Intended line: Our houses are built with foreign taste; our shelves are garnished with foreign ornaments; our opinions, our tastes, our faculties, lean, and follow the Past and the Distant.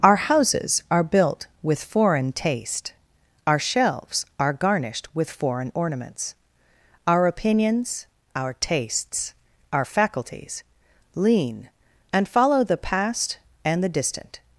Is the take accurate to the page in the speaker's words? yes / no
yes